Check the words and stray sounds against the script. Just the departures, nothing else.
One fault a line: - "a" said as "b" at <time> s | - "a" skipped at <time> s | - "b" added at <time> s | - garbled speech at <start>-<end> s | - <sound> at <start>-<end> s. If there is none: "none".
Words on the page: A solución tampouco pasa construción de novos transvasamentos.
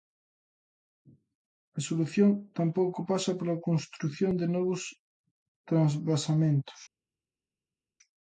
- "pola" added at 3.4 s